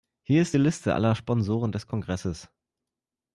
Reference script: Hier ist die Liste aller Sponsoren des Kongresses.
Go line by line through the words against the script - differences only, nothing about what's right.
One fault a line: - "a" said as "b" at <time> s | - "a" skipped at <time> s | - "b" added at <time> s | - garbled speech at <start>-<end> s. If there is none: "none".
none